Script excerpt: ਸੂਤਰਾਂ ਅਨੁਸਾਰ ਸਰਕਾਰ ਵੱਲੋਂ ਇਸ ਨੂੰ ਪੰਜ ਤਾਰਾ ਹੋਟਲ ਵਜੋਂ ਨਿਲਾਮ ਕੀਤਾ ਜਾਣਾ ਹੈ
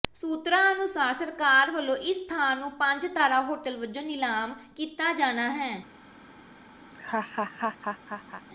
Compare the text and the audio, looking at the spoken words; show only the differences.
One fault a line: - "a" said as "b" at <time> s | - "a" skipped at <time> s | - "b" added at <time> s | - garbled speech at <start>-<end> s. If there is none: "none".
- "ਥਾਂ" added at 2.3 s